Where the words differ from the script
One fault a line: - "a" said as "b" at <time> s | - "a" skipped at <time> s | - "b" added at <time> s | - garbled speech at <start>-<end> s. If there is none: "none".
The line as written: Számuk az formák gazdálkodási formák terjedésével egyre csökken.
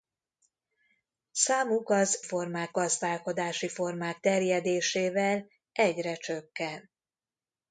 none